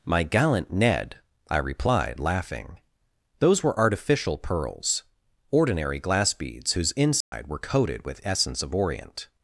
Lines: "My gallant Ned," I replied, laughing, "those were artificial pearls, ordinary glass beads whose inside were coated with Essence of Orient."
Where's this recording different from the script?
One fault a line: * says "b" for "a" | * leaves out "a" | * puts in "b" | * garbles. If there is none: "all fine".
all fine